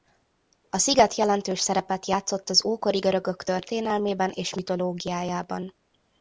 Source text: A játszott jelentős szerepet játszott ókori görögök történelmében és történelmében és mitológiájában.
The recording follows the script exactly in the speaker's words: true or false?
false